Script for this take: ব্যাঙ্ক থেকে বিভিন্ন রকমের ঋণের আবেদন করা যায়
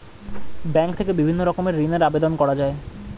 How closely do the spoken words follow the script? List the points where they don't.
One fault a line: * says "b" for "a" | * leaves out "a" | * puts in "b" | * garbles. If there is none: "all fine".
all fine